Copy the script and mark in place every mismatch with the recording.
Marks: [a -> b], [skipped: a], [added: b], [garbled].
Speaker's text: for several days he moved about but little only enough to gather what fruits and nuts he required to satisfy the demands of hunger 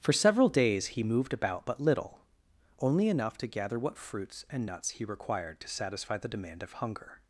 for several days he moved about but little only enough to gather what fruits and nuts he required to satisfy the [demands -> demand] of hunger